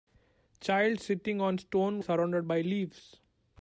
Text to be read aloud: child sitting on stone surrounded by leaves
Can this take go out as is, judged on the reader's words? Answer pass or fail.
pass